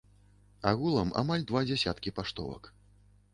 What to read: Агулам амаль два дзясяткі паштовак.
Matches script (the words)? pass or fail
pass